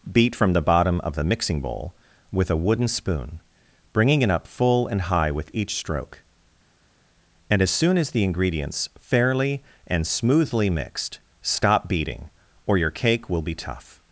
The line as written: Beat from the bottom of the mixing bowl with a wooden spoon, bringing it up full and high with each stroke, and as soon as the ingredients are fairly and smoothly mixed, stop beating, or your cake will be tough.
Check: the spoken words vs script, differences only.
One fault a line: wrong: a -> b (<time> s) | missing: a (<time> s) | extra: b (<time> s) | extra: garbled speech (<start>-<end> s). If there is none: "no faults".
missing: are (8.9 s)